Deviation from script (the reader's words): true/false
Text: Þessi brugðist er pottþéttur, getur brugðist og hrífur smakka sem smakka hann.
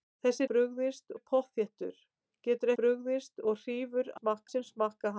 false